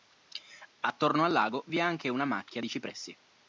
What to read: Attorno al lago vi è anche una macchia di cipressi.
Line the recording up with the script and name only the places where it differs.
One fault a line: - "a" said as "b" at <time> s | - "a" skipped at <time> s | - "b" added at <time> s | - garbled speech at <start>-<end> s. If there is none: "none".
none